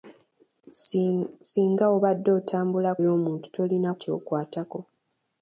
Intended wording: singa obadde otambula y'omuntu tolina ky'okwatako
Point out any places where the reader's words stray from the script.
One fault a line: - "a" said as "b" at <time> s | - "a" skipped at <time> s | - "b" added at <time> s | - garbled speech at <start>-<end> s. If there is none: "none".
none